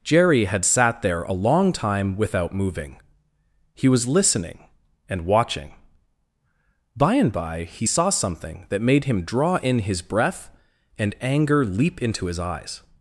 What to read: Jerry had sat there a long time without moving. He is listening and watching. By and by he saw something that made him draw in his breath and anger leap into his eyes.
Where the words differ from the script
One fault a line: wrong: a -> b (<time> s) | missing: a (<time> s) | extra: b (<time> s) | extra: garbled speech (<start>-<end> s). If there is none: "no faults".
wrong: is -> was (3.9 s)